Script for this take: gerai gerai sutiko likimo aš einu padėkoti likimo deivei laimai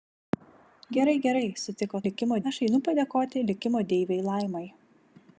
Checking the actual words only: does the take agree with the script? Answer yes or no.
yes